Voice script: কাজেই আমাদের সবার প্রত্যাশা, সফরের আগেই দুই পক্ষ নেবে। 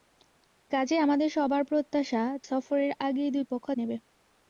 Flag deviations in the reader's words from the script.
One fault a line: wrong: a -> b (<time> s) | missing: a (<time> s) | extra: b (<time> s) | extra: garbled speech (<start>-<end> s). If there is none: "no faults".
no faults